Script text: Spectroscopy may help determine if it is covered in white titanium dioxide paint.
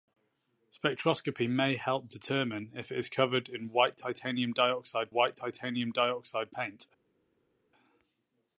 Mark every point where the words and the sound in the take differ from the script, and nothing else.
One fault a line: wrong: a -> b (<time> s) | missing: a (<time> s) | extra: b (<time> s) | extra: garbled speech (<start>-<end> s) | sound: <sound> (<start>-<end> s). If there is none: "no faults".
extra: white titanium dioxide (5.1 s)